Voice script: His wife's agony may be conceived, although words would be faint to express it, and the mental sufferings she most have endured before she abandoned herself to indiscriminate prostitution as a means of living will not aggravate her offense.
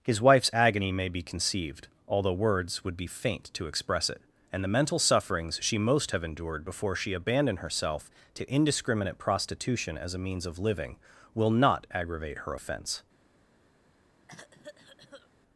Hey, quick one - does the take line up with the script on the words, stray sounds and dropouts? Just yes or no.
no